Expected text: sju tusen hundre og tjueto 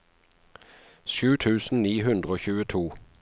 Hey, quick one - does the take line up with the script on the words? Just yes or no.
no